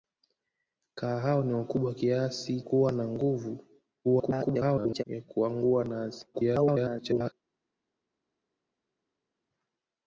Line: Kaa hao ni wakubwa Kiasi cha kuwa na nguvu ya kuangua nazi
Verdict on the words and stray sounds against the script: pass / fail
fail